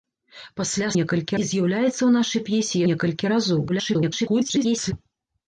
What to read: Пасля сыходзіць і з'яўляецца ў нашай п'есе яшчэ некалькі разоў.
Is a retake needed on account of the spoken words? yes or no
yes